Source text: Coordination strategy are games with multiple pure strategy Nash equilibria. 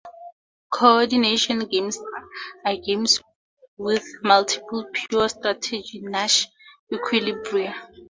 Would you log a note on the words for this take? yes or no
yes